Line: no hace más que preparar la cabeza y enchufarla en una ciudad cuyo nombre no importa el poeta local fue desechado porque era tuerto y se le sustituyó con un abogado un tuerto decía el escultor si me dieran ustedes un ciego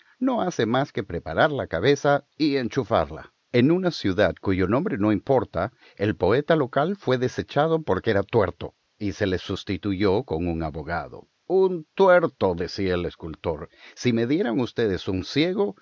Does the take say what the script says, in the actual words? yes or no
yes